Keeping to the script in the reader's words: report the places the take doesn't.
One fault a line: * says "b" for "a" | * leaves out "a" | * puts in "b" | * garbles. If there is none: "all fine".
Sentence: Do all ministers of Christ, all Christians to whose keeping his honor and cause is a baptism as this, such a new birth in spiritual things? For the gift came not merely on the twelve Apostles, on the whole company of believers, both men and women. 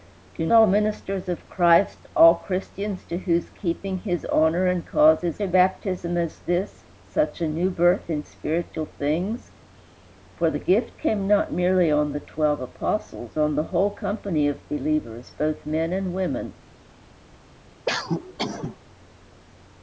all fine